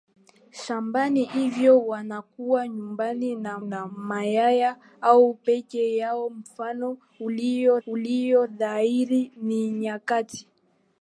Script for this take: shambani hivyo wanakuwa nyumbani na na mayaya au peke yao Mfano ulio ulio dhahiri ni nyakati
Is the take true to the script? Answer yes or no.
yes